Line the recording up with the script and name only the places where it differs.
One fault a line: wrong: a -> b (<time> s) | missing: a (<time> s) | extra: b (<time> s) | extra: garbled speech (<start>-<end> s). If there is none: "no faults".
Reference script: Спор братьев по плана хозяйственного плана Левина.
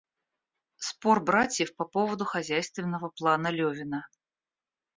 wrong: плана -> поводу (1.9 s)